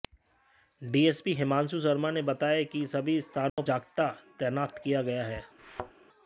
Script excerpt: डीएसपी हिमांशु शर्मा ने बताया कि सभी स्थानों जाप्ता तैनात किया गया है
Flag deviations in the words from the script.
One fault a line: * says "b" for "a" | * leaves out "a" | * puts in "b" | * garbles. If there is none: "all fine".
all fine